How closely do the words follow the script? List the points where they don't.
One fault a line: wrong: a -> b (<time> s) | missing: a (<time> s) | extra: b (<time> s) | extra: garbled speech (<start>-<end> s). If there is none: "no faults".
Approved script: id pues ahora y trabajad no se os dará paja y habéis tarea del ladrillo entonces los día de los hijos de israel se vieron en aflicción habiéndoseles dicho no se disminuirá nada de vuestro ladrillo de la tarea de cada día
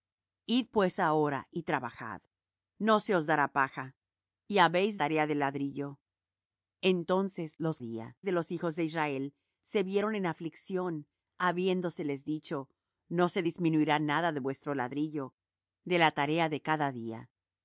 no faults